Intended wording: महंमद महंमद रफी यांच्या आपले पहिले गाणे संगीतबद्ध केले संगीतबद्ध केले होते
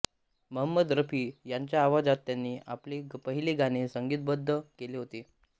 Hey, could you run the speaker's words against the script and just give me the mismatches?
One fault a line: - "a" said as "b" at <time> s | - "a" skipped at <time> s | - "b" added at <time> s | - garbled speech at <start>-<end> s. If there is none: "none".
- "महंमद" skipped at 0.9 s
- "आवाजात त्यांनी" added at 1.8 s
- "संगीतबद्ध केले" skipped at 5.0 s